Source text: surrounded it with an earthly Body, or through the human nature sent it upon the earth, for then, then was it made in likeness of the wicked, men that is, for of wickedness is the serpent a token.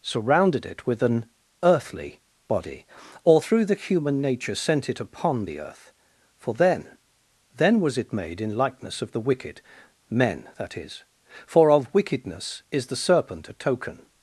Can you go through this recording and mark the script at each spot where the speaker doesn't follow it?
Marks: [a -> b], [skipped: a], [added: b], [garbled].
surrounded it with an earthly Body, or through the human nature sent it upon the earth, for then, then was it made in likeness of the wicked, men that is, for of wickedness is the serpent a token.